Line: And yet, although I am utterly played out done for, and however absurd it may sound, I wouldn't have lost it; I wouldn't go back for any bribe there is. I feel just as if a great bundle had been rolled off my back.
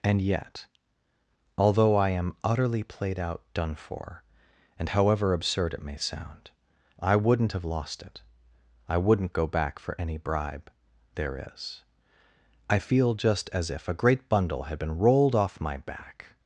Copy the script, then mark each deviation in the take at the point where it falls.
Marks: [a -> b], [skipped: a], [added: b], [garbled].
And yet, although I am utterly played out done for, and however absurd it may sound, I wouldn't have lost it; I wouldn't go back for any bribe there is. I feel just as if a great bundle had been rolled off my back.